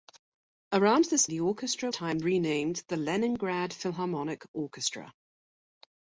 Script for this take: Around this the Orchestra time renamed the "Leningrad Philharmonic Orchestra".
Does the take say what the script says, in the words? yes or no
yes